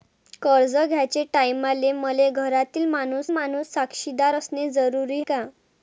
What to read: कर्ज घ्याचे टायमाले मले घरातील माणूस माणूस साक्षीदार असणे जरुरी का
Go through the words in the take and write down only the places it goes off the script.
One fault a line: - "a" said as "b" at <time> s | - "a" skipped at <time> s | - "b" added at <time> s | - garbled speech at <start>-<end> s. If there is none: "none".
none